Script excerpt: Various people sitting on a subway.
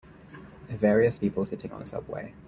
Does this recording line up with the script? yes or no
yes